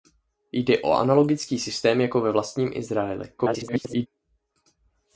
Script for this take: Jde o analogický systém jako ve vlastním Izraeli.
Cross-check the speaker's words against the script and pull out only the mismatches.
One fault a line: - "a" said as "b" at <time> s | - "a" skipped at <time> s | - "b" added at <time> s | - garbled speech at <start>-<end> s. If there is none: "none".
- garbled speech at 3.4-4.1 s